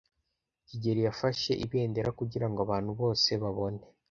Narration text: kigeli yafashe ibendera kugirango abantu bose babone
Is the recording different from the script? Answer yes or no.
no